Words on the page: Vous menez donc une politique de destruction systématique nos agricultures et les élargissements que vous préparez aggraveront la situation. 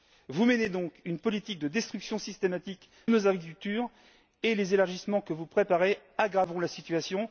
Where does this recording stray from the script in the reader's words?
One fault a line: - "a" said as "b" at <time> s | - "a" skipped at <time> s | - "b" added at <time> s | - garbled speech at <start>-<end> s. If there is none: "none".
none